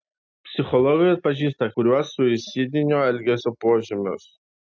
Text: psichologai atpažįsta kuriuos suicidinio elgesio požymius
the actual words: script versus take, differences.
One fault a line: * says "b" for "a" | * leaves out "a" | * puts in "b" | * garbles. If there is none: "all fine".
all fine